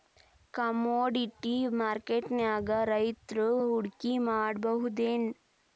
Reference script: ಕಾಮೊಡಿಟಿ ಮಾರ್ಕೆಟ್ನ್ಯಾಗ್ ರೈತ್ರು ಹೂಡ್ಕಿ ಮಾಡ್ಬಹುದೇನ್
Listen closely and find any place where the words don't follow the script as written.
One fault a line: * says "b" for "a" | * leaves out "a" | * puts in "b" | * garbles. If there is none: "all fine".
all fine